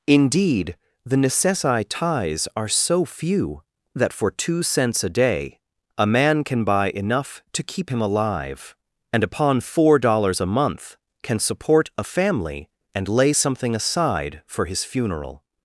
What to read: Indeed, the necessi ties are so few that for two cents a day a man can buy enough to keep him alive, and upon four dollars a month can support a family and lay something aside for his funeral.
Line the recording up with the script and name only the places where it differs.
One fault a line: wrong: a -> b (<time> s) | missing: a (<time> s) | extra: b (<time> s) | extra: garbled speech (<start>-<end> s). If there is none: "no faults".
no faults